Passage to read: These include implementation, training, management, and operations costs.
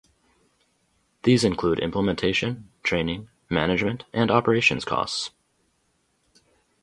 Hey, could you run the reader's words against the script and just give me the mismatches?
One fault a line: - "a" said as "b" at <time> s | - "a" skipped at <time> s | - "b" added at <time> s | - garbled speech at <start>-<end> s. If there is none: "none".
none